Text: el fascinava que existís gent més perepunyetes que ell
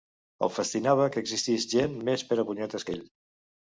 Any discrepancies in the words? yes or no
no